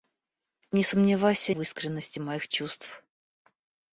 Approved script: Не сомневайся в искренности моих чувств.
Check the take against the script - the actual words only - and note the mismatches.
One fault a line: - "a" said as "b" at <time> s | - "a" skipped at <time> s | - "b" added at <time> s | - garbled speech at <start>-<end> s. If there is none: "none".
none